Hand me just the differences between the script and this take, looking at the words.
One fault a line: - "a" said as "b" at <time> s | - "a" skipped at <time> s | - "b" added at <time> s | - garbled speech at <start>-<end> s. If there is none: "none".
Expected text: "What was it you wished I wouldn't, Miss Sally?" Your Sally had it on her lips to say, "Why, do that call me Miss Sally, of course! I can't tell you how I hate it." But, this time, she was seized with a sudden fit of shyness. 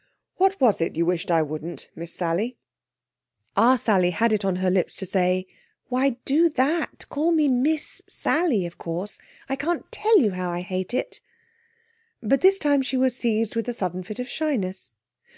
- "Your" said as "Our" at 3.5 s